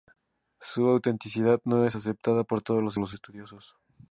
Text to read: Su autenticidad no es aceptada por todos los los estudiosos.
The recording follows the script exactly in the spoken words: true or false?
true